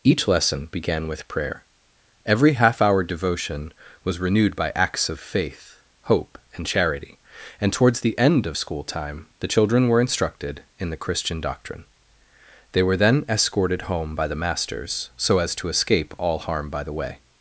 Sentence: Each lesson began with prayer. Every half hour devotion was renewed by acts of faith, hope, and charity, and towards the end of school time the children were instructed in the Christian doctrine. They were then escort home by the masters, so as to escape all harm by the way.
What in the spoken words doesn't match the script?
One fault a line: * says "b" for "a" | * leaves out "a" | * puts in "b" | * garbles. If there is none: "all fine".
* says "escorted" for "escort"